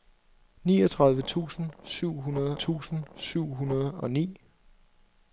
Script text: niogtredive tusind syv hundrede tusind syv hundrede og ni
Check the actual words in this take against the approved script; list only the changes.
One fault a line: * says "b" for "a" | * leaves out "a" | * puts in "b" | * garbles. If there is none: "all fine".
all fine